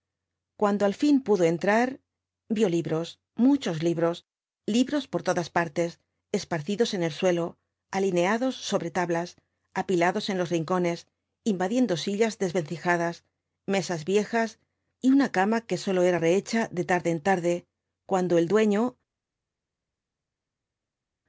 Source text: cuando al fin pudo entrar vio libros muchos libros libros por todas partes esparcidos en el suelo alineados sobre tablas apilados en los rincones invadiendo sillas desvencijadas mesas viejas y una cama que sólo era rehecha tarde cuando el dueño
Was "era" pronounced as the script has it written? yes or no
yes